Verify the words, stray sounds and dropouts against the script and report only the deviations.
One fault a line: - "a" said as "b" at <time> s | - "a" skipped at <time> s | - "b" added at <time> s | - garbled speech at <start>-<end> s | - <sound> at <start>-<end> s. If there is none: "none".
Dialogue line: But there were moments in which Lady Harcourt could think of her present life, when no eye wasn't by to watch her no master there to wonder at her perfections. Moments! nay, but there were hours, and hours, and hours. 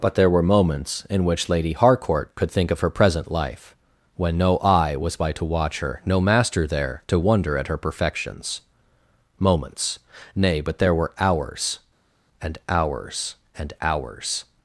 - "wasn't" said as "was" at 5.0 s